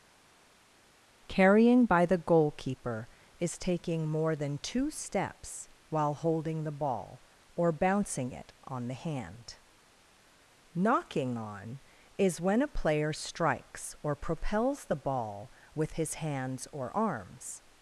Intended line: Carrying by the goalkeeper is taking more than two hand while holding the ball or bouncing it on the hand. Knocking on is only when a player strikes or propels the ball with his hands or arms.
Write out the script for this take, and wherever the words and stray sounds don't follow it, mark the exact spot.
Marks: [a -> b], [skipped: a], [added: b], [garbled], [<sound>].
Carrying by the goalkeeper is taking more than two [hand -> steps] while holding the ball or bouncing it on the hand. Knocking on is [skipped: only] when a player strikes or propels the ball with his hands or arms.